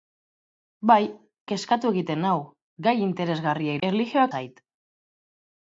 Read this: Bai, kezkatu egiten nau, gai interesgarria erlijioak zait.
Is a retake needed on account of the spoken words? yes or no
no